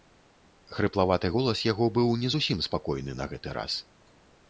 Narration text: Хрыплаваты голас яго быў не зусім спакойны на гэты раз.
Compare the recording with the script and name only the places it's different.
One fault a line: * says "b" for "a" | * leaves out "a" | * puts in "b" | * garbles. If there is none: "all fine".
all fine